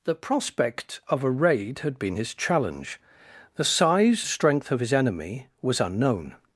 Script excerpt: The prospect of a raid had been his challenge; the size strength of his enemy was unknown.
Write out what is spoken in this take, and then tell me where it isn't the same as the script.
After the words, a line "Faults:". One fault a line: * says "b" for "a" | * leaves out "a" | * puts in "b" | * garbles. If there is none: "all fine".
The prospect of a raid had been his challenge; the size strength of his enemy was unknown.
Faults:
all fine